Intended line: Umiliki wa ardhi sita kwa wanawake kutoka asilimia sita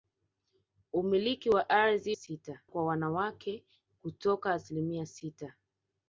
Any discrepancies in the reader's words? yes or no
no